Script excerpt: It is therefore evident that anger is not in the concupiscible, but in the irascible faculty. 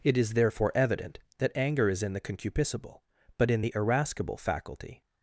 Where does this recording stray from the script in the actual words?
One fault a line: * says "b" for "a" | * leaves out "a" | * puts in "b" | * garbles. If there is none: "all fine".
* leaves out "not"